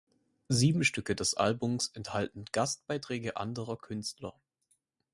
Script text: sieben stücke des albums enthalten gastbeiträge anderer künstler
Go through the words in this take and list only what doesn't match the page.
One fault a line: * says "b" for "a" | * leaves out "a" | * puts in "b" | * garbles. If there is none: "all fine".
all fine